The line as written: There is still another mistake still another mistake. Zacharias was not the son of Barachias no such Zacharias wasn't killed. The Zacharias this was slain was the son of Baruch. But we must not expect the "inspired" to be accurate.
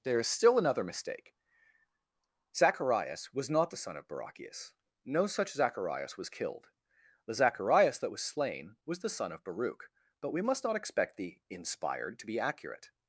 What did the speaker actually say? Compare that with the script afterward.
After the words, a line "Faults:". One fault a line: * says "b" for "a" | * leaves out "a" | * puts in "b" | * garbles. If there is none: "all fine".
There is still another mistake. Zacharias was not the son of Barachias no such Zacharias was killed. The Zacharias that was slain was the son of Baruch. But we must not expect the "inspired" to be accurate.
Faults:
* leaves out "still another mistake"
* says "was" for "wasn't"
* says "that" for "this"